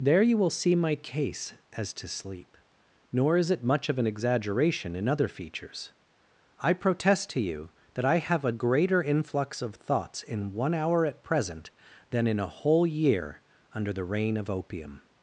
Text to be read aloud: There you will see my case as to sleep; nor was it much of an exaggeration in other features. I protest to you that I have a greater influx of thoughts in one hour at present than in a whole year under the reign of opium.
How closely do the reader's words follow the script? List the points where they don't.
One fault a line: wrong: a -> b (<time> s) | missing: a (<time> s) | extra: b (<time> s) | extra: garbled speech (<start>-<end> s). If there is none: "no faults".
wrong: was -> is (3.4 s)